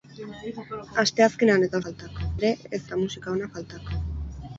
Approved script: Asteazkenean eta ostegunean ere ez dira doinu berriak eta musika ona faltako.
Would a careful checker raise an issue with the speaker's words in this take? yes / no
yes